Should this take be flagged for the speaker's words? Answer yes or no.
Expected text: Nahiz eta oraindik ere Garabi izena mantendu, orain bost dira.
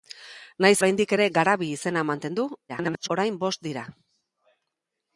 yes